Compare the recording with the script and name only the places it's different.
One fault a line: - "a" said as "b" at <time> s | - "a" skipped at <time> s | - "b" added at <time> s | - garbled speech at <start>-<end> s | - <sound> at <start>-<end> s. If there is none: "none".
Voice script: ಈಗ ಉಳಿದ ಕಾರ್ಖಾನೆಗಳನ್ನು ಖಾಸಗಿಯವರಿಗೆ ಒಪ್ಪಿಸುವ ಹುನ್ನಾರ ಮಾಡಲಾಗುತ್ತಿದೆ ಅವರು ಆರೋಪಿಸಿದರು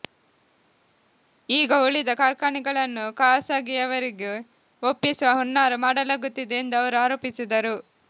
- "ಎಂದು" added at 6.6 s